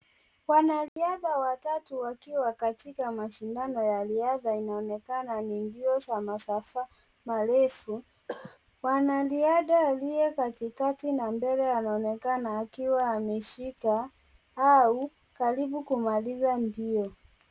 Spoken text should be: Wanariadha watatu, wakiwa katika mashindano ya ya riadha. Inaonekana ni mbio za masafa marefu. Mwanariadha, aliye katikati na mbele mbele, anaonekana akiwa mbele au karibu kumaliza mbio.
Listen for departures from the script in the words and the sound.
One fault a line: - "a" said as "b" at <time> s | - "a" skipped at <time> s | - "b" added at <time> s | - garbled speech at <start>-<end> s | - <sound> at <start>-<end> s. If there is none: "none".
- dropout at 0.9-1.0 s
- "ya" skipped at 4.0 s
- cough at 8.3-8.6 s
- "mbele" skipped at 11.7 s
- "mbele" said as "ameshika" at 13.1 s